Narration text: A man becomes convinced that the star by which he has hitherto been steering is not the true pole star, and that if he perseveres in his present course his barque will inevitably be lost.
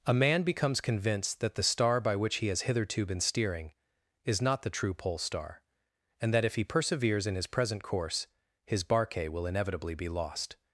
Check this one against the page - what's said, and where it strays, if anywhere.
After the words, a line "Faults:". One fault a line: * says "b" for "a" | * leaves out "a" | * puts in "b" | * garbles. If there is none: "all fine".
A man becomes convinced that the star by which he has hitherto been steering is not the true pole star, and that if he perseveres in his present course his barque will inevitably be lost.
Faults:
all fine